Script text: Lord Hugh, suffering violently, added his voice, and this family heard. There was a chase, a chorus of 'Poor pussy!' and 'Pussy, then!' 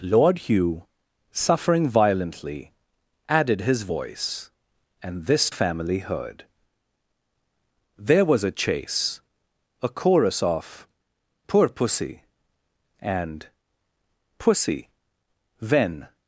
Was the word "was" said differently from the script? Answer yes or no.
no